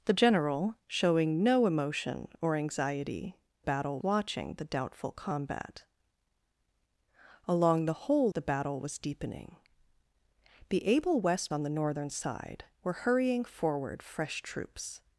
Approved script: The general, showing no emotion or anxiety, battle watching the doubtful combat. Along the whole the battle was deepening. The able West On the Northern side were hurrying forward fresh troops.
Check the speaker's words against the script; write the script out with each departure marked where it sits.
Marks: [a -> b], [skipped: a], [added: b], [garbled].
The general, showing no emotion or anxiety, battle watching the doubtful combat. Along the whole the battle was deepening. The able West On the Northern side were hurrying forward fresh troops.